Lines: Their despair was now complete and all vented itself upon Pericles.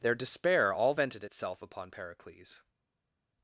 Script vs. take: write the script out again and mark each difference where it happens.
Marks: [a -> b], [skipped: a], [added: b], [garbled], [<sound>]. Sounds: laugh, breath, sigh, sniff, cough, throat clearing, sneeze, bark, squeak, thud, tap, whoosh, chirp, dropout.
Their despair [skipped: was now complete and] all vented itself upon Pericles.